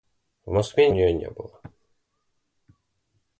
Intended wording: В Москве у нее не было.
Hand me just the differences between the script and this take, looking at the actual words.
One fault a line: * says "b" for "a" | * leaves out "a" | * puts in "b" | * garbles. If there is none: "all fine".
all fine